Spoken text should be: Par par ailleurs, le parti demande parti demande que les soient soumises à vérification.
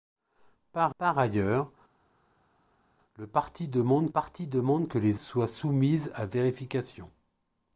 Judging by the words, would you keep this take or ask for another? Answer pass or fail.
pass